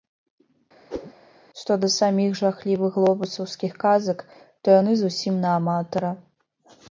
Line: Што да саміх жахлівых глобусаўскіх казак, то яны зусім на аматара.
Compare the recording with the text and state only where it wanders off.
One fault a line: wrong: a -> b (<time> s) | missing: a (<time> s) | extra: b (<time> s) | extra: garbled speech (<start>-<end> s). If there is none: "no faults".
no faults